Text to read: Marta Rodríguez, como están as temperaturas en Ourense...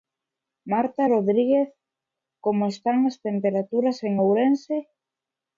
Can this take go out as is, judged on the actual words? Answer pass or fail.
pass